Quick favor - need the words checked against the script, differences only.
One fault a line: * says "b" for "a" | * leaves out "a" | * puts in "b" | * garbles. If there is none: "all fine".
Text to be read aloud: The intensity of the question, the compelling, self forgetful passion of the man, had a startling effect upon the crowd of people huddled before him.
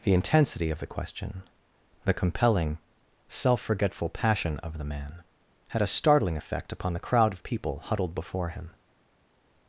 all fine